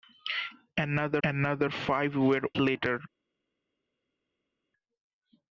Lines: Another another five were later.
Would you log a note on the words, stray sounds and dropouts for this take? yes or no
no